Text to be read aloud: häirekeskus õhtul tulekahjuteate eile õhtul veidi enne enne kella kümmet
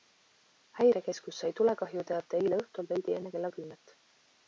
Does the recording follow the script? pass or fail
fail